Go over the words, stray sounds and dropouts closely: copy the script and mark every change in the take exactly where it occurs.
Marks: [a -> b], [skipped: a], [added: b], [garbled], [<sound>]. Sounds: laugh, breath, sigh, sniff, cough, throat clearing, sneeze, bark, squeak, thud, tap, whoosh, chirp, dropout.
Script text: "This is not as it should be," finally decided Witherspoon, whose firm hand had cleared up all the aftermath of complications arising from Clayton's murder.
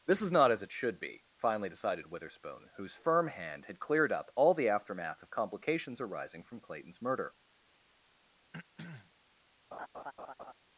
"This is not as it should be," finally decided Witherspoon, whose firm hand had cleared up all the aftermath of complications arising from Clayton's murder. [throat clearing] [laugh]